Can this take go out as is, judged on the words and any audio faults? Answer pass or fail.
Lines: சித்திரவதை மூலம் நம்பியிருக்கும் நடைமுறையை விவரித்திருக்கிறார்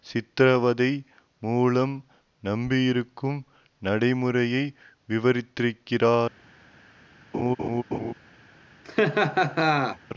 fail